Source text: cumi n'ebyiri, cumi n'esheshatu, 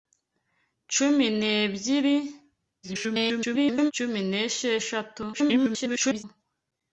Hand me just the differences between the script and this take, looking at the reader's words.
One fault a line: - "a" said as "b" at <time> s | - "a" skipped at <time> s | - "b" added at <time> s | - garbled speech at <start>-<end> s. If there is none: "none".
- garbled speech at 2.8-3.9 s
- garbled speech at 5.3-6.2 s